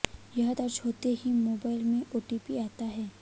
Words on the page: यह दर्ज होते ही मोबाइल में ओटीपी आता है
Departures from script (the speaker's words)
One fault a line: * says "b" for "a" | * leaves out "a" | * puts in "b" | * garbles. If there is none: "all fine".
all fine